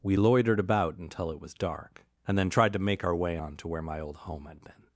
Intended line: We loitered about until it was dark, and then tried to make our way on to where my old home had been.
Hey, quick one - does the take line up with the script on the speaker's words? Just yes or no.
yes